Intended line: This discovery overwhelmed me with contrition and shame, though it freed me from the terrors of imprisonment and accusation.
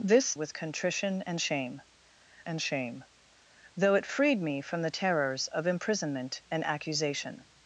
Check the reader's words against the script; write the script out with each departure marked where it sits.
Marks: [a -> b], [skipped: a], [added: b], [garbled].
This [discovery overwhelmed me with contrition -> with contrition and shame] and shame, though it freed me from the terrors of imprisonment and accusation.